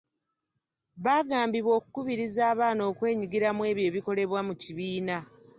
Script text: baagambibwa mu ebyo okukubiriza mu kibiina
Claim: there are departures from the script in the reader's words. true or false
true